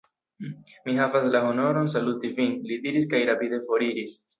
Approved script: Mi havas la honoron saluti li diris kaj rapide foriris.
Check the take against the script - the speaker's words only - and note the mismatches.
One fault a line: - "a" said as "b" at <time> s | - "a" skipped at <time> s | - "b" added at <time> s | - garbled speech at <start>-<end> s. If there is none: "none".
- "vin" added at 2.4 s